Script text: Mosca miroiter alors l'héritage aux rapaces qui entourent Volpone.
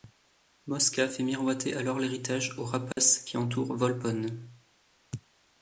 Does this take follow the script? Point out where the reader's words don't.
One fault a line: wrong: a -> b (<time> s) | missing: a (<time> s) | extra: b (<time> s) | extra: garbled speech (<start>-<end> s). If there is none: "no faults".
extra: fait (1.1 s)